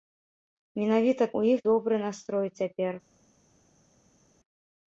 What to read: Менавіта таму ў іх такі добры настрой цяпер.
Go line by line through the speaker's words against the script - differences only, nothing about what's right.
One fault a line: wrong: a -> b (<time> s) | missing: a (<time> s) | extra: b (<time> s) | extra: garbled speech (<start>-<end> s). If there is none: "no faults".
missing: таму (1.3 s)
missing: такі (1.6 s)